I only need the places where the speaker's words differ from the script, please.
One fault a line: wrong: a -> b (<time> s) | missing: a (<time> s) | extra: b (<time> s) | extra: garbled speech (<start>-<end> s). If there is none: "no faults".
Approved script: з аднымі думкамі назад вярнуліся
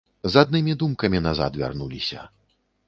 no faults